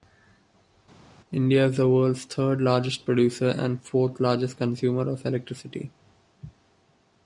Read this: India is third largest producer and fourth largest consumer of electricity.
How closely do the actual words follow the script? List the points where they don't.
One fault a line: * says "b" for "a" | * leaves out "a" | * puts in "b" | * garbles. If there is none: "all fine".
* puts in "the world's"